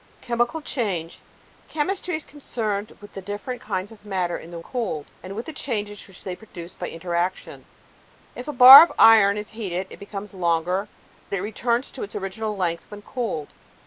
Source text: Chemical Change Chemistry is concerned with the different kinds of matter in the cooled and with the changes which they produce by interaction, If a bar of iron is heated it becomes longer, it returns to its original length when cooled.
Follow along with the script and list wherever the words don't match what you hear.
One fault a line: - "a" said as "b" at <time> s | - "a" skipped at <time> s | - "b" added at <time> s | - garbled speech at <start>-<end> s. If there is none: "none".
none